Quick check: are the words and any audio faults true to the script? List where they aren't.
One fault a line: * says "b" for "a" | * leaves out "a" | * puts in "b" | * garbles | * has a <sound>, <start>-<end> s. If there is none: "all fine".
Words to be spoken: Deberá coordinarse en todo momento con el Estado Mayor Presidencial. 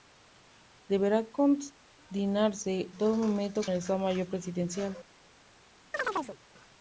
* leaves out "en"
* leaves out "con"
* has a chirp, 5.9-6.4 s